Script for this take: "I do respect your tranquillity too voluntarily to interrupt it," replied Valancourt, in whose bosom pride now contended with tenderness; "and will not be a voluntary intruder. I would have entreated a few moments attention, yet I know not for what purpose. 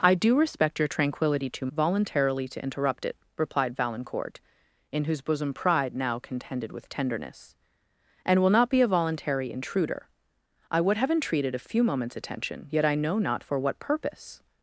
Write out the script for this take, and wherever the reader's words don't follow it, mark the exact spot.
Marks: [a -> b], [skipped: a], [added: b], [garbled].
"I do respect your tranquillity too voluntarily to interrupt it," replied Valancourt, in whose bosom pride now contended with tenderness; "and will not be a voluntary intruder. I would have entreated a few moments attention, yet I know not for what purpose.